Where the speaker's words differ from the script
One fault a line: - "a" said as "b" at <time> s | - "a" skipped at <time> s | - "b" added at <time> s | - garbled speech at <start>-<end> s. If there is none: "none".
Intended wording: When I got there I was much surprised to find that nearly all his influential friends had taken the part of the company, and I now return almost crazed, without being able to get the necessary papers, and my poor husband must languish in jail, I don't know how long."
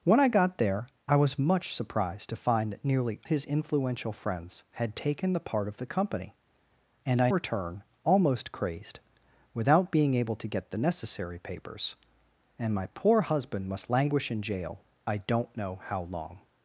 - "all" skipped at 3.2 s
- "now" skipped at 7.3 s